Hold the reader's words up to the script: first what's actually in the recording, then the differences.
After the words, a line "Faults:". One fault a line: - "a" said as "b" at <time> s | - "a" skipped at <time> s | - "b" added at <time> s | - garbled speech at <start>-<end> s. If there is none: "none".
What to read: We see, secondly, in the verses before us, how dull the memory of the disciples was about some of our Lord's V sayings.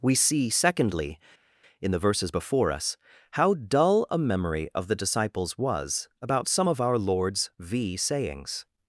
We see, secondly, in the verses before us, how dull a memory of the disciples was about some of our Lord's V sayings.
Faults:
- "the" said as "a" at 4.1 s